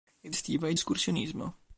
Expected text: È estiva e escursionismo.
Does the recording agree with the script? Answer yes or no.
yes